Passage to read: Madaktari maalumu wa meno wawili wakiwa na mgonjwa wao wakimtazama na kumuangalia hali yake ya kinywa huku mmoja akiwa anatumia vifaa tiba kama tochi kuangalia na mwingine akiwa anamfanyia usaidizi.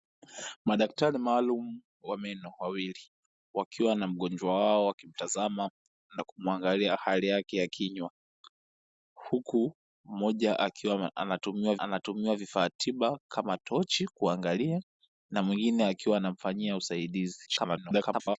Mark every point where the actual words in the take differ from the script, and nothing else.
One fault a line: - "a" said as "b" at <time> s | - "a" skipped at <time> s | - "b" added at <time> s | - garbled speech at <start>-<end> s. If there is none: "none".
- "anatumia" added at 11.8 s
- garbled speech at 17.5-18.4 s